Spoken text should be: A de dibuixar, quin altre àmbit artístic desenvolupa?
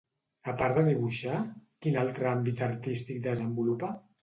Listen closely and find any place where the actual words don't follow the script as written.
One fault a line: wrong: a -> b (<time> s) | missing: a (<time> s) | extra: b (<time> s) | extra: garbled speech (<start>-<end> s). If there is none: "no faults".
extra: part (0.6 s)